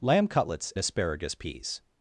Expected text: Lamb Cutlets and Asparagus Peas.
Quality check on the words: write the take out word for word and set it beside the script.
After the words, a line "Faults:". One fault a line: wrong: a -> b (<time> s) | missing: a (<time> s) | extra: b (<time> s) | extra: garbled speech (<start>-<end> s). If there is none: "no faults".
Lamb Cutlets Asparagus Peas.
Faults:
missing: and (0.7 s)